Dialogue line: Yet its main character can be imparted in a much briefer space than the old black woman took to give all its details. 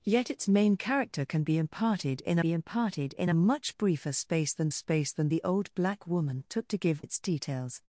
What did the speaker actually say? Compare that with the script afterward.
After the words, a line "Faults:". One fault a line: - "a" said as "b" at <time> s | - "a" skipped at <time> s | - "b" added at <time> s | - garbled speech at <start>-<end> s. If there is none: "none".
Yet its main character can be imparted in be imparted in a much briefer space than space than the old black woman took to give its details.
Faults:
- "be imparted in" added at 2.4 s
- "space than" added at 4.7 s
- "all" skipped at 7.0 s